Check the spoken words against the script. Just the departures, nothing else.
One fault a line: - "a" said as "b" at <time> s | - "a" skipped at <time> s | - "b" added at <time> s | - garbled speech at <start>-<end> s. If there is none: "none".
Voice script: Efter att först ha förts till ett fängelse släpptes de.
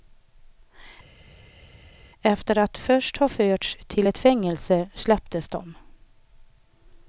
none